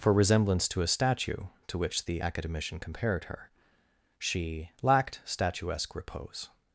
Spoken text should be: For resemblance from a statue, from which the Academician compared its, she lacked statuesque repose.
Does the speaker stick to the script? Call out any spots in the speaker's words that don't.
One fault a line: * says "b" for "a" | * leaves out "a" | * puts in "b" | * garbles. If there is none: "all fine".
* says "to" for "from"
* says "to" for "from"
* says "her" for "its"